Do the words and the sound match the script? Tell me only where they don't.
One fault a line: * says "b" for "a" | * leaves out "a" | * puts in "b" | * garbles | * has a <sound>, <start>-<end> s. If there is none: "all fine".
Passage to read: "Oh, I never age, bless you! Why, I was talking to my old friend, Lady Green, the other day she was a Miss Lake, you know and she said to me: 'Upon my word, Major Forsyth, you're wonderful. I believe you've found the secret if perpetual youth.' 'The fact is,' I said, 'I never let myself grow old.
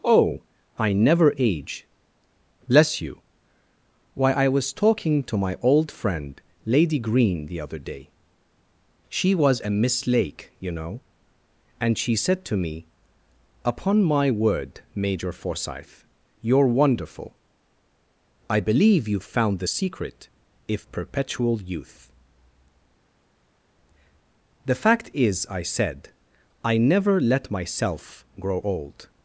all fine